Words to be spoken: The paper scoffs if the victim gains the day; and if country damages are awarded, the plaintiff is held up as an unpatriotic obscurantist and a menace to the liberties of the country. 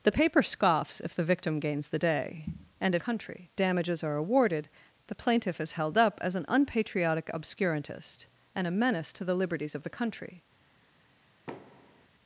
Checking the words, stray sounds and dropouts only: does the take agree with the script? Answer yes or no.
no